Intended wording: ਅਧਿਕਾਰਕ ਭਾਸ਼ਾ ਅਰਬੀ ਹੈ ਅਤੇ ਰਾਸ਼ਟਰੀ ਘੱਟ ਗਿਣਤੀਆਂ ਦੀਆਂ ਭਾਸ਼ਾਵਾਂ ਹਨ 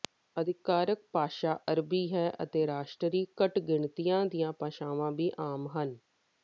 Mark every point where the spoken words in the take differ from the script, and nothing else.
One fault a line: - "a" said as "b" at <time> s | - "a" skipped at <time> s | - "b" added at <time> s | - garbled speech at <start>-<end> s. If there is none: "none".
- "ਵੀ ਆਮ" added at 5.1 s